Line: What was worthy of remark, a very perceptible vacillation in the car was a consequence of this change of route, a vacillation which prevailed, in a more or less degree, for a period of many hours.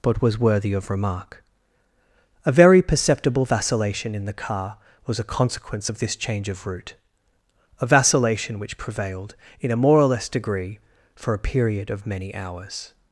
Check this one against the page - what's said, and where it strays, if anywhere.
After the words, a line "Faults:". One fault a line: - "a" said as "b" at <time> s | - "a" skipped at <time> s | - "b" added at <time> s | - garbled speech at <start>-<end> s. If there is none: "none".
But was worthy of remark, a very perceptible vacillation in the car was a consequence of this change of route, a vacillation which prevailed, in a more or less degree, for a period of many hours.
Faults:
- "What" said as "But" at 0.0 s